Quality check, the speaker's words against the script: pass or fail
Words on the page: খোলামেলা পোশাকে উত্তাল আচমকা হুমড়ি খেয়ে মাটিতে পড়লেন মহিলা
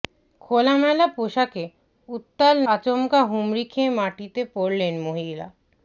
pass